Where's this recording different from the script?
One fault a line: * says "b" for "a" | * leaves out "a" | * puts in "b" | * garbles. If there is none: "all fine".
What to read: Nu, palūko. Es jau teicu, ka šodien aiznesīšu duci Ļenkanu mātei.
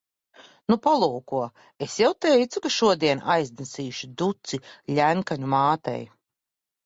all fine